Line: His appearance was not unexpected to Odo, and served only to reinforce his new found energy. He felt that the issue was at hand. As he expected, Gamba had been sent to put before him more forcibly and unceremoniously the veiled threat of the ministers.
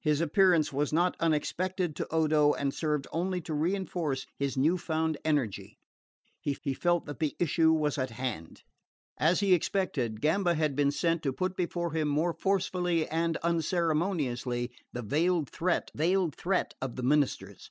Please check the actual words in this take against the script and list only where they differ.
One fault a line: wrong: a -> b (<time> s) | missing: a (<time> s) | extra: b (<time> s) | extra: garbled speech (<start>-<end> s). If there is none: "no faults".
extra: he (6.6 s)
extra: veiled threat (15.9 s)